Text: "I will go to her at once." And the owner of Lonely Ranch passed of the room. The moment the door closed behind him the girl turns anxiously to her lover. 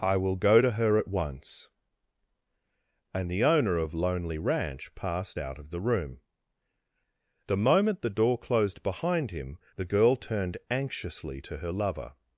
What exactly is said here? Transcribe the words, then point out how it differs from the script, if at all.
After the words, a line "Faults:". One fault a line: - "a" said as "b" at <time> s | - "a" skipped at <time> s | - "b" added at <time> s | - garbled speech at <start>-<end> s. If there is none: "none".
"I will go to her at once." And the owner of Lonely Ranch passed out of the room. The moment the door closed behind him the girl turned anxiously to her lover.
Faults:
- "out" added at 5.4 s
- "turns" said as "turned" at 10.1 s